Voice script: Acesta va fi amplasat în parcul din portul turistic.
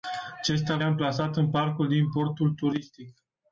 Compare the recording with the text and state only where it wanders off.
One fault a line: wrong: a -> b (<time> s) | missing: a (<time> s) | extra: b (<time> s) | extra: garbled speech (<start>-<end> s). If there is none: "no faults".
missing: va fi (0.8 s)